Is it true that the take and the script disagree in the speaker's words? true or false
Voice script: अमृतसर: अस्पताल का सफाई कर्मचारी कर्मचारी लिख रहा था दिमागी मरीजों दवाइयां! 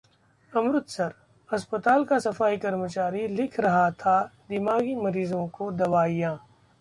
true